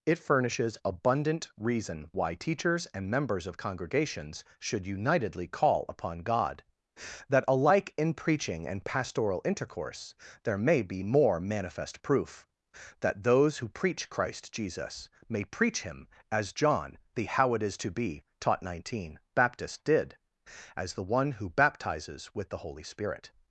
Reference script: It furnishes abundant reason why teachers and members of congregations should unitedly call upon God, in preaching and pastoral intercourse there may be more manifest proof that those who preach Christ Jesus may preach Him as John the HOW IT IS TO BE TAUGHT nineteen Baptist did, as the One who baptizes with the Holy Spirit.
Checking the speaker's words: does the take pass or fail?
fail